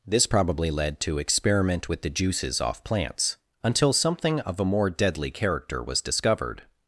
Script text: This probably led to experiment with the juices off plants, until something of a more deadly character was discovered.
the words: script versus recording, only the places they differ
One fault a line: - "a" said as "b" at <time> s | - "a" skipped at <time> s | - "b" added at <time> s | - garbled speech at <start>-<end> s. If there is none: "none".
none